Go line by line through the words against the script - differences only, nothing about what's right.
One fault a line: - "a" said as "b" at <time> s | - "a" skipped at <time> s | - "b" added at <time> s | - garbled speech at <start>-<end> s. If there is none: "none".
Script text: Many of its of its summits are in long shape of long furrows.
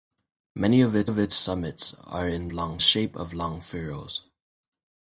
none